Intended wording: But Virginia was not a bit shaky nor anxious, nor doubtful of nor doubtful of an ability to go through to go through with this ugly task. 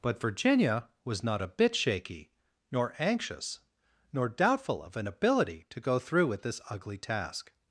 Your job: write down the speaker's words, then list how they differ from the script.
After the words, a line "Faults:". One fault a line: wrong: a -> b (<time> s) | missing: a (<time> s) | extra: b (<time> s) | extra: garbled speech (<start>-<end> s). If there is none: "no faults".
But Virginia was not a bit shaky nor anxious, nor doubtful of an ability to go through with this ugly task.
Faults:
missing: nor doubtful of (5.0 s)
missing: to go through (6.3 s)